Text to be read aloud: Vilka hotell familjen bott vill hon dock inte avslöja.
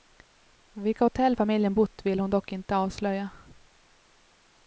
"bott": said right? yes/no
yes